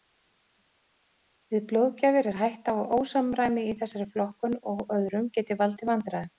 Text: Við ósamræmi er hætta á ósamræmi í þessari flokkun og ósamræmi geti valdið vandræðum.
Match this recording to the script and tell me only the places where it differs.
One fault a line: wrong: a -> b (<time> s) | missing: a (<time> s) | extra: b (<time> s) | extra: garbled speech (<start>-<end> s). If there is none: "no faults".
wrong: ósamræmi -> blóðgjafir (1.7 s)
extra: að (2.8 s)
wrong: ósamræmi -> öðrum (5.0 s)